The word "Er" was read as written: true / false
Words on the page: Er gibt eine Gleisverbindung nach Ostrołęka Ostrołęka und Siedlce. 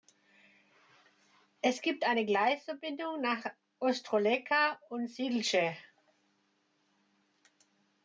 false